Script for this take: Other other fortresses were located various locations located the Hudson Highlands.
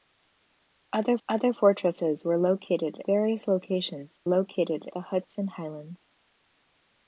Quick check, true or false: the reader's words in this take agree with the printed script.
true